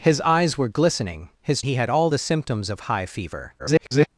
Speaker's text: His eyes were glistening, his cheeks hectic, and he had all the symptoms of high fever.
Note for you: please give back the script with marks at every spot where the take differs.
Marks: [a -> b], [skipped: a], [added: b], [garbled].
His eyes were glistening, his [skipped: cheeks hectic, and] he had all the symptoms of high fever. [garbled]